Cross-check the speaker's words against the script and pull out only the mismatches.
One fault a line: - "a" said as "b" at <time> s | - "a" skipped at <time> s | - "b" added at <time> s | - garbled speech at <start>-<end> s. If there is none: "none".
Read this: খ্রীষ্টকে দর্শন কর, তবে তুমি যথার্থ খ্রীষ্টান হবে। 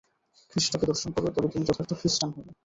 none